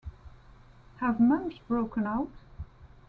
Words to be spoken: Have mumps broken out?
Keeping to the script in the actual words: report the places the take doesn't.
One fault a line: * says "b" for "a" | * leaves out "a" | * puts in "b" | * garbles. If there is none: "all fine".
all fine